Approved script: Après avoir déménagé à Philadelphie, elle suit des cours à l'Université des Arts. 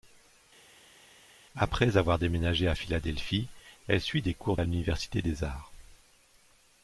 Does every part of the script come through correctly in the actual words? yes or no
yes